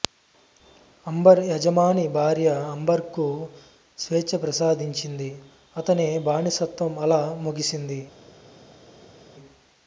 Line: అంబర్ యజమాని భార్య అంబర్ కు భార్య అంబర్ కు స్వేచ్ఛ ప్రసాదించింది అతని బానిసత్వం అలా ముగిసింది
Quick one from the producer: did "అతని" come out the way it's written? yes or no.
yes